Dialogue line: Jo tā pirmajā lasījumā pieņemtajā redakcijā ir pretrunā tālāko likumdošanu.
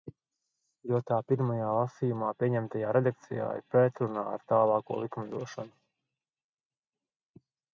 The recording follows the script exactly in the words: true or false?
false